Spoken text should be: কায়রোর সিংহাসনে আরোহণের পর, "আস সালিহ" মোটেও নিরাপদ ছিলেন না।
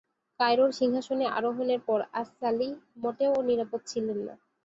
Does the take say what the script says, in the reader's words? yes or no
yes